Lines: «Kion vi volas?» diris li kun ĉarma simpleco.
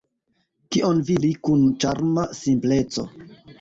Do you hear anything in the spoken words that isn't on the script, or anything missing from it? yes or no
yes